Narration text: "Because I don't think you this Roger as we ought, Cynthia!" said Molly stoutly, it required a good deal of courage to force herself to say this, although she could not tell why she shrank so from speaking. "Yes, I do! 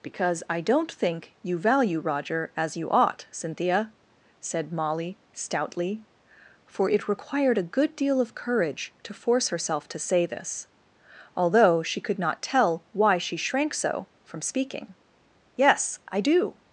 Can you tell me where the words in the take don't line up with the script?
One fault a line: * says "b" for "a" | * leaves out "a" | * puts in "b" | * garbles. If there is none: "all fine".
* says "value" for "this"
* says "you" for "we"
* puts in "for"